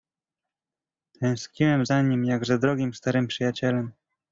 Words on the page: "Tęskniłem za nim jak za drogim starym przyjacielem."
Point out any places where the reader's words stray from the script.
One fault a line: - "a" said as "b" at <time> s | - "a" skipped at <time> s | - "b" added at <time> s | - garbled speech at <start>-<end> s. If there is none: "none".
none